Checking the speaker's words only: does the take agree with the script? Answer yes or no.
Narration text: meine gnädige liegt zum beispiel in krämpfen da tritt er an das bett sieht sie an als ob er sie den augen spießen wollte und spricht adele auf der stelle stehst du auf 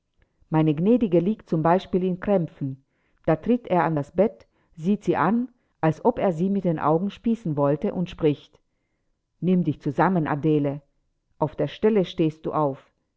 no